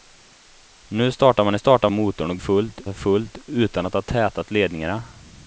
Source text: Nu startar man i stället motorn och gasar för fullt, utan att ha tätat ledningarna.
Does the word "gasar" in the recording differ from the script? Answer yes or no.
yes